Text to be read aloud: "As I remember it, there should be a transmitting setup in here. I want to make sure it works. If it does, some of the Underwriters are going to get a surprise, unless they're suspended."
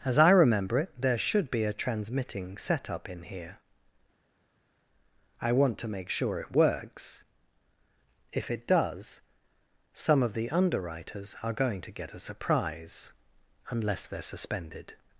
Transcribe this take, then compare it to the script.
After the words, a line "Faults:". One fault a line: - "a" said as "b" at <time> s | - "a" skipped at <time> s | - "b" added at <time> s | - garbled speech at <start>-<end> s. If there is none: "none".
"As I remember it, there should be a transmitting setup in here. I want to make sure it works. If it does, some of the Underwriters are going to get a surprise, unless they're suspended."
Faults:
none